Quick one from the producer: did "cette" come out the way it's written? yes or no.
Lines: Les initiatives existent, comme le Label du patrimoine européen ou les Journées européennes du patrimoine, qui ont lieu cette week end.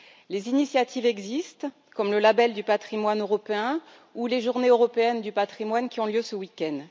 no